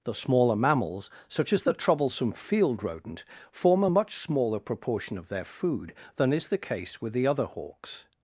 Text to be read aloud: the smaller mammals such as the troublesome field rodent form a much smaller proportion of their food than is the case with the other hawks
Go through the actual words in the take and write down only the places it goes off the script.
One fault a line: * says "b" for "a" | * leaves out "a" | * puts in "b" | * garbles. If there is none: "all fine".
all fine